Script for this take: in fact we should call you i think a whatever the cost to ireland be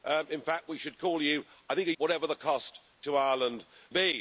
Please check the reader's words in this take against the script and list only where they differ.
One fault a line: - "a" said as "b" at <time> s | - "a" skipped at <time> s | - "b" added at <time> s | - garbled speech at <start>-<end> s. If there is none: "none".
none